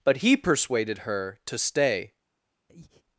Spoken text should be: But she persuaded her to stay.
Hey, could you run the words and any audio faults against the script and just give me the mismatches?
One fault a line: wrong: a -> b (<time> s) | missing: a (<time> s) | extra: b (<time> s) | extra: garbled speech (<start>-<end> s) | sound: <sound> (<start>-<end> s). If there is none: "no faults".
wrong: she -> he (0.1 s)
sound: breath (2.7-3.0 s)